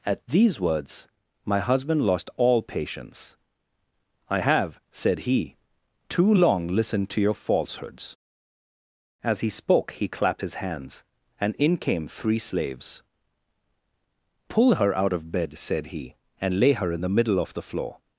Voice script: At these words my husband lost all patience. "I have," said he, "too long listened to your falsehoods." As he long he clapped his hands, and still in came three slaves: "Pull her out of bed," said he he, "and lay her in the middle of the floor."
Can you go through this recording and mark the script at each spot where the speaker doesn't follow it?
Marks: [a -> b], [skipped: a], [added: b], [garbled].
At these words my husband lost all patience. "I have," said he, "too long listened to your falsehoods." As he [long -> spoke] he clapped his hands, and [skipped: still] in came three slaves: "Pull her out of bed," said he [skipped: he,] "and lay her in the middle of the floor."